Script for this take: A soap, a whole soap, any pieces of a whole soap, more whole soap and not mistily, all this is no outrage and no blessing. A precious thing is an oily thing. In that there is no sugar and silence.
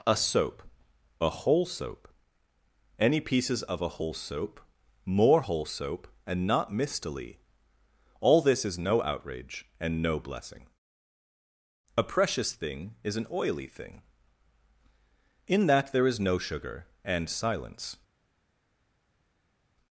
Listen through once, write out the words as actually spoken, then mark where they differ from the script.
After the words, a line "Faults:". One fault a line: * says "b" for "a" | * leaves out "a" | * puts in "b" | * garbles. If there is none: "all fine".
A soap, a whole soap, any pieces of a whole soap, more whole soap and not mistily, all this is no outrage and no blessing. A precious thing is an oily thing. In that there is no sugar and silence.
Faults:
all fine